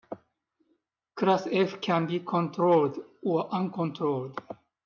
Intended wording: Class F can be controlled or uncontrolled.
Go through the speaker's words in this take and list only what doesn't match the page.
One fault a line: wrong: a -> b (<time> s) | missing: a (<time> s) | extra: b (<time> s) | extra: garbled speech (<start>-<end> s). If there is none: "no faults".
no faults